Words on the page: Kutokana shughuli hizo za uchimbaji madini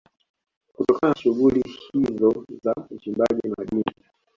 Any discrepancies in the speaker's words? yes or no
no